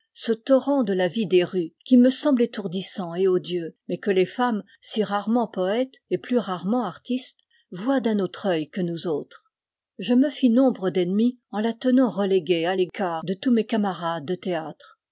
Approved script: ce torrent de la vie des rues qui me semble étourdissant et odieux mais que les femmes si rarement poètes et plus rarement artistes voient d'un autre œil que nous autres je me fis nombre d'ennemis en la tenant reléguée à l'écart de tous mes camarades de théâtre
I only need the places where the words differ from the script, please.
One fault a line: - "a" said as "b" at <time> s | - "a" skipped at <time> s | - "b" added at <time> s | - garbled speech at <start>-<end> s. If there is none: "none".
none